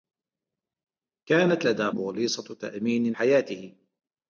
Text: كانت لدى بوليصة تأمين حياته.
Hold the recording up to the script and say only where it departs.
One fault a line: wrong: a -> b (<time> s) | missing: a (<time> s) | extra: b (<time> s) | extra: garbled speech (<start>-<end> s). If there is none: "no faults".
no faults